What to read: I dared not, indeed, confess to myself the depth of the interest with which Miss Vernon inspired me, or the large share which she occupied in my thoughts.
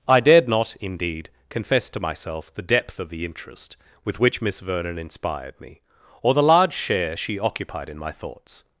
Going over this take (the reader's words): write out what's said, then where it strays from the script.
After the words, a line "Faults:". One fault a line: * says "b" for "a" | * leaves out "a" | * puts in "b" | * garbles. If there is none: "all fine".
I dared not, indeed, confess to myself the depth of the interest with which Miss Vernon inspired me, or the large share she occupied in my thoughts.
Faults:
* leaves out "which"